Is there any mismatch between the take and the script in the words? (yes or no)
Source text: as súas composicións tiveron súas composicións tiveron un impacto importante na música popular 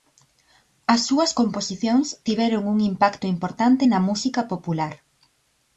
yes